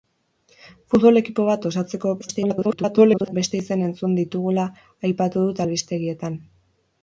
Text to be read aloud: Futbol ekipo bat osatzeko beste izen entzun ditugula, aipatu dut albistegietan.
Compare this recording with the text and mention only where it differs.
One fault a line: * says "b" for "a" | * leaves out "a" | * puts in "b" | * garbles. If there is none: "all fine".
* garbles